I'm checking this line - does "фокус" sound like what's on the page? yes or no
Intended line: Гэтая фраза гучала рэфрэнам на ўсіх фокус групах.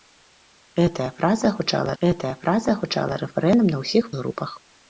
no